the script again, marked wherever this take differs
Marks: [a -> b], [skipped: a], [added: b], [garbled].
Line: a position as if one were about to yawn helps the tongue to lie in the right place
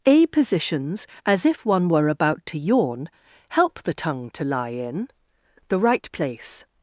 a [position -> positions] as if one were about to yawn [helps -> help] the tongue to lie in the right place